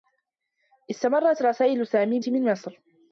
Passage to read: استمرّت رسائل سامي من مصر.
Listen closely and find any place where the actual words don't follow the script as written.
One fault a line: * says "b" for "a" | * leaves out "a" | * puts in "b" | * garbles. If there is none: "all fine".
all fine